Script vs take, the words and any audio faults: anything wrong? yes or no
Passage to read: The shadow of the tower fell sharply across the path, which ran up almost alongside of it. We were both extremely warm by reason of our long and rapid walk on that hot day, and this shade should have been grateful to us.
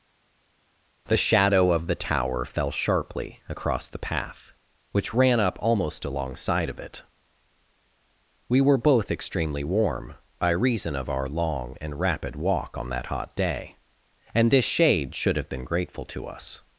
no